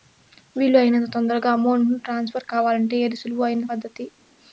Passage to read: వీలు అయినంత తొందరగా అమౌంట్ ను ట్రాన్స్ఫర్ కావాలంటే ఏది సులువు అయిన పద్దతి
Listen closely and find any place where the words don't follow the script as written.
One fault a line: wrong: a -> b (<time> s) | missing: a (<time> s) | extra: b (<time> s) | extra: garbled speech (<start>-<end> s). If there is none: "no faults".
no faults